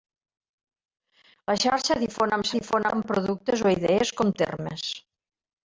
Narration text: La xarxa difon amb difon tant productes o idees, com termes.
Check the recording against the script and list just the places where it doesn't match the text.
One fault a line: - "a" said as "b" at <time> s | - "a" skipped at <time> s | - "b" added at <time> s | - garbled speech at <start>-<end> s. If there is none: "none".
none